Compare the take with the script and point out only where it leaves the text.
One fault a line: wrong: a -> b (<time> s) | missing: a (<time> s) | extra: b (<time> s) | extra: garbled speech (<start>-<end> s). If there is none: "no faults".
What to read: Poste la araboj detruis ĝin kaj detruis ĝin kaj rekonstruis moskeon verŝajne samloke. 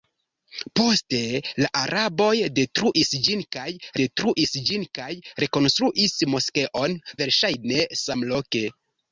no faults